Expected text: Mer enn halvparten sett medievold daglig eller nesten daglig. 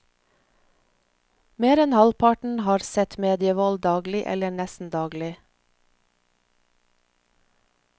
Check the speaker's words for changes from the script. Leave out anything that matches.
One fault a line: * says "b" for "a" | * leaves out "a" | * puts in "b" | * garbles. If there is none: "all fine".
* puts in "har"